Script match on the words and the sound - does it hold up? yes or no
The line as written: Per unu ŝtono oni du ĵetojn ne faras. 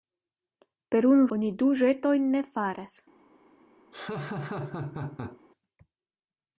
no